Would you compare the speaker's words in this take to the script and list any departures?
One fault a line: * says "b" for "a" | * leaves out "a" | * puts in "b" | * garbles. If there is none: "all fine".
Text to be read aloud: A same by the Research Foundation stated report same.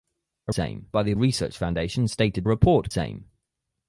all fine